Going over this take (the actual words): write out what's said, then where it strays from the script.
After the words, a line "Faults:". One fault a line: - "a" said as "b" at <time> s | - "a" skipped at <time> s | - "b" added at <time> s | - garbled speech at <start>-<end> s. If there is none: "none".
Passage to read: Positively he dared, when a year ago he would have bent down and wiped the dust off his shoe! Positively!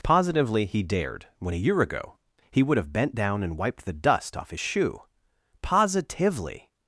Positively he dared, when a year ago he would have bent down and wiped the dust off his shoe! Positively!
Faults:
none